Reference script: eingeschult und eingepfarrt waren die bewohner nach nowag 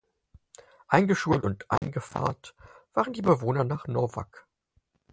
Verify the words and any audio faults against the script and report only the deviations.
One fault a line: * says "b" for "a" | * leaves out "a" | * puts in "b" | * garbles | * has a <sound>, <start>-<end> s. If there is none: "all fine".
* has a dropout, 1.8-1.8 s